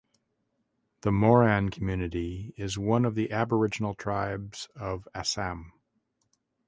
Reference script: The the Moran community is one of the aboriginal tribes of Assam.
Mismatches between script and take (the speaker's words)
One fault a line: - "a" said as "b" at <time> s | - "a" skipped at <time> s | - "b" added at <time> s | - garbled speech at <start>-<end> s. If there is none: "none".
- "the" skipped at 1.1 s